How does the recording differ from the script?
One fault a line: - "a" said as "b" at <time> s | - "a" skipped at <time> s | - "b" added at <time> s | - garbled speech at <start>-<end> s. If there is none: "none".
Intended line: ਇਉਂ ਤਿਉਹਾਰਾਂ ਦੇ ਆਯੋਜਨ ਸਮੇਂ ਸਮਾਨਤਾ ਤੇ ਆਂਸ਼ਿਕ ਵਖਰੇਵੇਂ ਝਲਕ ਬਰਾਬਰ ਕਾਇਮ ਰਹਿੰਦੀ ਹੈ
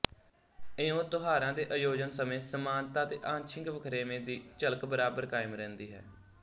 - "ਦੀ" added at 4.2 s